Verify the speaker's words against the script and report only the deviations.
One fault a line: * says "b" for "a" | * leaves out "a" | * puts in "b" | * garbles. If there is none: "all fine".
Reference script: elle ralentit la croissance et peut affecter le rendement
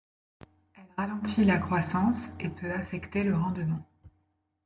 all fine